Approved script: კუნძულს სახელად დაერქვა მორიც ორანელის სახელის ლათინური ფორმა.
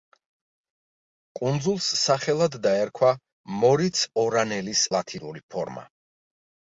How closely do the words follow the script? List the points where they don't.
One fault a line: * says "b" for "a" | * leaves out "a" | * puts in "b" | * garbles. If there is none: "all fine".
* leaves out "სახელის"